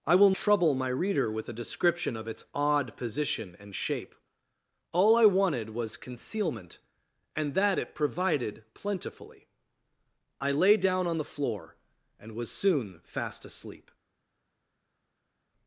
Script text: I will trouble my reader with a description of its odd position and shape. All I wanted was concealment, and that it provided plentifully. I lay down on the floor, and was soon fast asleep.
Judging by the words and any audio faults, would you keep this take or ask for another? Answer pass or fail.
pass